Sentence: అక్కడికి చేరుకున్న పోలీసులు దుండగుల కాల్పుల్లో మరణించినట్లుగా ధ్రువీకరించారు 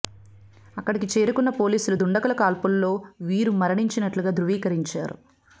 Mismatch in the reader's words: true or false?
true